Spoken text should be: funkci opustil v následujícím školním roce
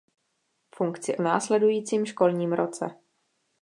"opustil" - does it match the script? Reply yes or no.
no